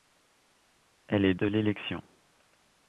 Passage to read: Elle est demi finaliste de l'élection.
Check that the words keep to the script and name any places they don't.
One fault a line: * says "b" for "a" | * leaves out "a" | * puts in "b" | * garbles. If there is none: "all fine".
* leaves out "demi finaliste"